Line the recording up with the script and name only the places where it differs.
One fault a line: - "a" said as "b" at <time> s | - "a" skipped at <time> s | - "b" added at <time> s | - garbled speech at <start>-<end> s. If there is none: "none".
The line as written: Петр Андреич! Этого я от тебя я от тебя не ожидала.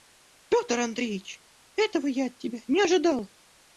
- "я от тебя" skipped at 2.6 s